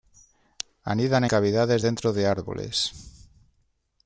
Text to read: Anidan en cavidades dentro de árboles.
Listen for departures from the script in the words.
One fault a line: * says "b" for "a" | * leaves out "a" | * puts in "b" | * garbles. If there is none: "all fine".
* leaves out "en"